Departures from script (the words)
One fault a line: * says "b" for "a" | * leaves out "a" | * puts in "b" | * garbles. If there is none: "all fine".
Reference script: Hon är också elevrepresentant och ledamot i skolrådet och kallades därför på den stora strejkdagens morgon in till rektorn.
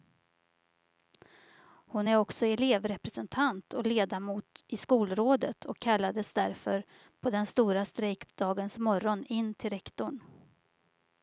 all fine